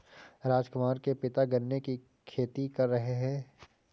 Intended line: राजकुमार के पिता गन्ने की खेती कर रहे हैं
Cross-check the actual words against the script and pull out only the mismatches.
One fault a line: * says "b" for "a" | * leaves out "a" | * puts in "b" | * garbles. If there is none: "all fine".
all fine